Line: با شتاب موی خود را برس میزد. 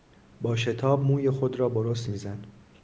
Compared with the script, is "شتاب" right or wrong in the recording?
right